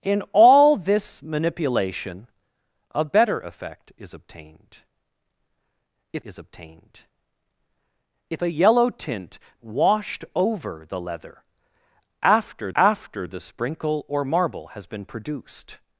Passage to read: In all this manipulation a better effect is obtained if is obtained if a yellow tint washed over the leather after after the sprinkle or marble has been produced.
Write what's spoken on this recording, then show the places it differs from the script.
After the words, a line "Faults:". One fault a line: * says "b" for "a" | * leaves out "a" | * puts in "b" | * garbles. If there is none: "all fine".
In all this manipulation a better effect is obtained if is obtained if a yellow tint washed over the leather after after the sprinkle or marble has been produced.
Faults:
all fine